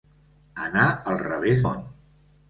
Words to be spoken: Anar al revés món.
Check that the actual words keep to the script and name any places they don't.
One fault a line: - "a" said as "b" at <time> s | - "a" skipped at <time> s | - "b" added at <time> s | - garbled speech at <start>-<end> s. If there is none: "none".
none